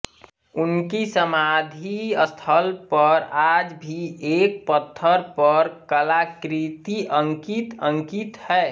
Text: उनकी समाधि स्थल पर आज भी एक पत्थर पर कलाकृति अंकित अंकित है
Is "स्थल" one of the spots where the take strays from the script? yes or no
no